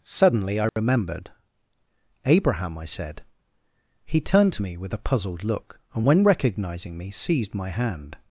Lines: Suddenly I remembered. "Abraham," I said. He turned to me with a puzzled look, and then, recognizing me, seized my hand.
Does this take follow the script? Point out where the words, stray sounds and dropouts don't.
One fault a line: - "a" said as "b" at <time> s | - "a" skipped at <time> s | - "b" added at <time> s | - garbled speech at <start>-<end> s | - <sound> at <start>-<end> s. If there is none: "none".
- dropout at 0.7-0.8 s
- "then" said as "when" at 6.0 s